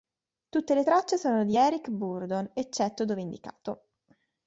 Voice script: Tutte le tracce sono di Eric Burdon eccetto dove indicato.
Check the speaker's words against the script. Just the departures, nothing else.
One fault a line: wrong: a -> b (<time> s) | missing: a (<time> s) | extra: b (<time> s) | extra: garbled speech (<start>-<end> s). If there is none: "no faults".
no faults